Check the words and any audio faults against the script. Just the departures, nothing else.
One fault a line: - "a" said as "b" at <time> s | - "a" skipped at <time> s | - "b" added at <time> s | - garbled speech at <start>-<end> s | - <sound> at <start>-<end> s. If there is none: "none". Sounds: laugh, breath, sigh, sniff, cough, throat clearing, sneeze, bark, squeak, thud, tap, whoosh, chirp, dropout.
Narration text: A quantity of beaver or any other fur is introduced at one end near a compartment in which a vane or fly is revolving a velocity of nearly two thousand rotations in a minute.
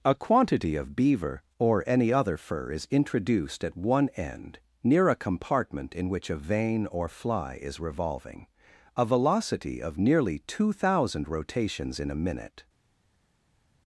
none